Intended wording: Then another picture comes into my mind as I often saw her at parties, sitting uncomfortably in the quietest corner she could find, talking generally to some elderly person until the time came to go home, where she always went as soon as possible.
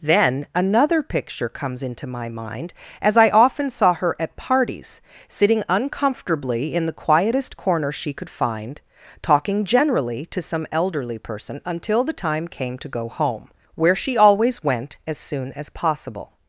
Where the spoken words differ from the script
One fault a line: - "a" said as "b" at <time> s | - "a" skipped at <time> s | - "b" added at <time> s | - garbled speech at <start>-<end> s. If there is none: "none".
none